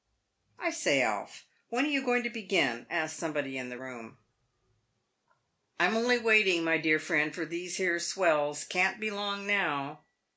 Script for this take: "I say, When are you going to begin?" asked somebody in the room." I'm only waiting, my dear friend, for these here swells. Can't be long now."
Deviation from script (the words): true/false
true